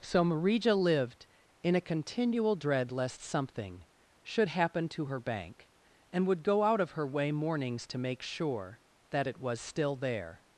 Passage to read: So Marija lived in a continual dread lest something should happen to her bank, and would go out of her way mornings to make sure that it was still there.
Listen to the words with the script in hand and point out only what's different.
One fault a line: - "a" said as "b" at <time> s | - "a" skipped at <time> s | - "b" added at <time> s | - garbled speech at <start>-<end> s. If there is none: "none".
none